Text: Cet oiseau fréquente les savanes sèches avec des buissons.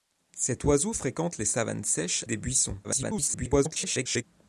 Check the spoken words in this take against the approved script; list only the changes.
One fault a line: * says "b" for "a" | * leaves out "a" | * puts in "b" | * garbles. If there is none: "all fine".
* leaves out "avec"
* garbles